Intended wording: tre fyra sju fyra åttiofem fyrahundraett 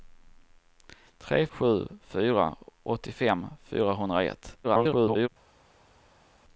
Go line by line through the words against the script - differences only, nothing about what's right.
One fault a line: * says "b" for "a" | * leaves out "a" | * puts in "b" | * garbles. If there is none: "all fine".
* leaves out "fyra"
* garbles